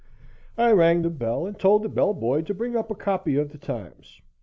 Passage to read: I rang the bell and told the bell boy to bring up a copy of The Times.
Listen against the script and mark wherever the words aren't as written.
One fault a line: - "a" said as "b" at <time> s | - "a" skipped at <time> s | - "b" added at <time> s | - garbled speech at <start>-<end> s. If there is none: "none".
none